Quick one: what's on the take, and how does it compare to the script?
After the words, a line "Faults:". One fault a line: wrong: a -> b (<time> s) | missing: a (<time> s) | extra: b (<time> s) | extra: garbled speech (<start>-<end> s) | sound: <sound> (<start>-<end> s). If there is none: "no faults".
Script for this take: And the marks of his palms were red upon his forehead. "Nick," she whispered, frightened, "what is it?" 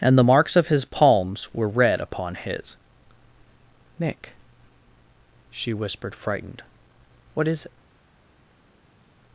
And the marks of his palms were red upon his. "Nick," she whispered, frightened, "what is it?"
Faults:
missing: forehead (2.8 s)